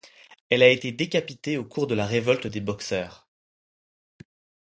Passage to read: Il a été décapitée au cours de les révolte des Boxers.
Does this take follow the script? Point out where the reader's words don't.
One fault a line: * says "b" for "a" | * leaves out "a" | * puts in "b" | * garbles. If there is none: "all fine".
* says "Elle" for "Il"
* says "la" for "les"